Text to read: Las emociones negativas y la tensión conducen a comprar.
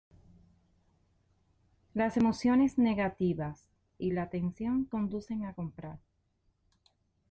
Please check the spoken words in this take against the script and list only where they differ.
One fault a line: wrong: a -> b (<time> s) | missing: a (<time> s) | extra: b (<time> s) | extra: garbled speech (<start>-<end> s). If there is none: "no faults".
no faults